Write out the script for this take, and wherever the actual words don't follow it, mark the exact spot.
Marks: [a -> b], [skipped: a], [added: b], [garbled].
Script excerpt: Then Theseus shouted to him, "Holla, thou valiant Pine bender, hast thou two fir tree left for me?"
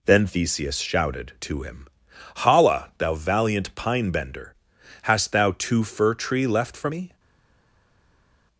Then Theseus shouted to him, "Holla, thou valiant Pine bender, hast thou two fir tree left for me?"